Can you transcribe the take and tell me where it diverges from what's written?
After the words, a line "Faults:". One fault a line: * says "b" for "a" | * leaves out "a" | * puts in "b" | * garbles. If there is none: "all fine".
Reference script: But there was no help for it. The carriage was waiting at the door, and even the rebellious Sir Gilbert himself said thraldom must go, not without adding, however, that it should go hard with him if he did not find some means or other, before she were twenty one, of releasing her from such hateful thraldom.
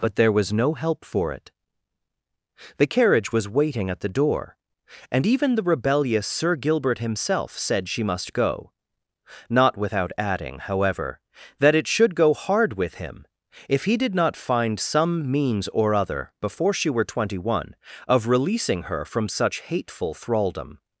But there was no help for it. The carriage was waiting at the door, and even the rebellious Sir Gilbert himself said she must go, not without adding, however, that it should go hard with him if he did not find some means or other, before she were twenty one, of releasing her from such hateful thraldom.
Faults:
* says "she" for "thraldom"